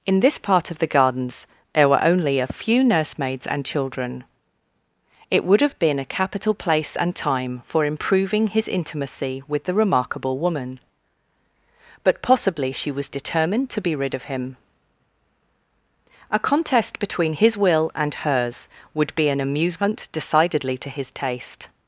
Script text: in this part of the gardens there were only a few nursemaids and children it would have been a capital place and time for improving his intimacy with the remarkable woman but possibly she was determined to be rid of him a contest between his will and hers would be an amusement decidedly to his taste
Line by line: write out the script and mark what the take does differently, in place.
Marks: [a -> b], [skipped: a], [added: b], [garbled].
in this part of the gardens there were only a few nursemaids and children it would have been a capital place and time for improving his intimacy with the remarkable woman but possibly she was determined to be rid of him a contest between his will and hers would be an amusement decidedly to his taste